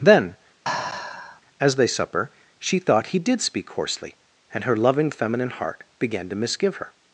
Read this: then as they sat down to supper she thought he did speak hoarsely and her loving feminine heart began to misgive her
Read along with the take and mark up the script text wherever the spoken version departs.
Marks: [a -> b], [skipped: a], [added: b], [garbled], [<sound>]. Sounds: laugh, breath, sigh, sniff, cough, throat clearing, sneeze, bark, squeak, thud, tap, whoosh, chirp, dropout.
then [sigh] as they [skipped: sat down to] supper she thought he did speak hoarsely and her loving feminine heart began to misgive her